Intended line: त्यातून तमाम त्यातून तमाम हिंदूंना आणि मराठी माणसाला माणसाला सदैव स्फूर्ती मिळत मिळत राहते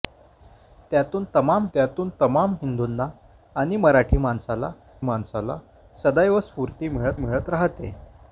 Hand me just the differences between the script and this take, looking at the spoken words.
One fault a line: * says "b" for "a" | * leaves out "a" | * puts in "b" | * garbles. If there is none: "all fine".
all fine